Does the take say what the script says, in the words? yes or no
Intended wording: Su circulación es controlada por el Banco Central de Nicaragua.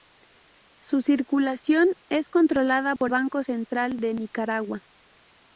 no